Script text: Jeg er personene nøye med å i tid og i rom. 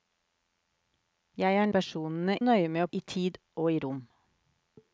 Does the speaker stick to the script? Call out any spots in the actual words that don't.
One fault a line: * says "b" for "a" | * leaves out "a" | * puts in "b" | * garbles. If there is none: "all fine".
all fine